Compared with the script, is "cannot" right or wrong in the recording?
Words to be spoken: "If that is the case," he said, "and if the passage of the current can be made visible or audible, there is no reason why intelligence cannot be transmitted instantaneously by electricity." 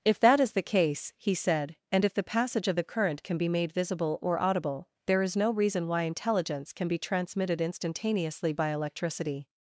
wrong